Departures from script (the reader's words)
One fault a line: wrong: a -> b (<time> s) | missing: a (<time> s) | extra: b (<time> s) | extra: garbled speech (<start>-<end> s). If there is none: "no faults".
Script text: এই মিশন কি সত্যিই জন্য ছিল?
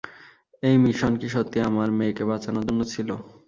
extra: আমার মেয়েকে বাঁচানোর (1.7 s)